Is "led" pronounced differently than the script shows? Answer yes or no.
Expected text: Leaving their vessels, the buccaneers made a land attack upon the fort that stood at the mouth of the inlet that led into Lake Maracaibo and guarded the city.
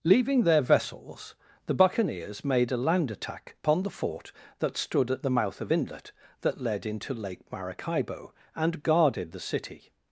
no